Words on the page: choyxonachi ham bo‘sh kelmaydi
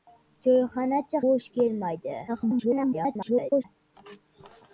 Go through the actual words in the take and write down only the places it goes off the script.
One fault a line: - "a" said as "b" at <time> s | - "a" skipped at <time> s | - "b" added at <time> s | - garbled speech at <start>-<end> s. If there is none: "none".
- "ham" skipped at 1.2 s
- garbled speech at 2.3-3.6 s